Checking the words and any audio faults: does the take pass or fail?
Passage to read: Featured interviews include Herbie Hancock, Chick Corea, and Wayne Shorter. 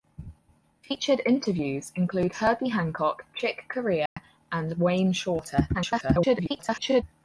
fail